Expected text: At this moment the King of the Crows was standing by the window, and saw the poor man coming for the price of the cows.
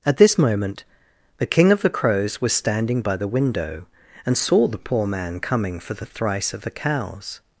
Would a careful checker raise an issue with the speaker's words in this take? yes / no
yes